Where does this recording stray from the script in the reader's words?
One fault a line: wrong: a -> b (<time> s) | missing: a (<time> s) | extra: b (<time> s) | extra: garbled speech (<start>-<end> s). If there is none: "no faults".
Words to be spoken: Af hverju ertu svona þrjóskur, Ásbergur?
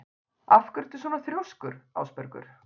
no faults